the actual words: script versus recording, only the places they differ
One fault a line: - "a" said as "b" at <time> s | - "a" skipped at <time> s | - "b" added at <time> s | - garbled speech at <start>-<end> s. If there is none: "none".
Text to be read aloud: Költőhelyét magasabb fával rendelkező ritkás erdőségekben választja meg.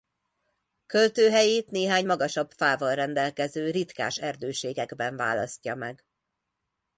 - "néhány" added at 1.7 s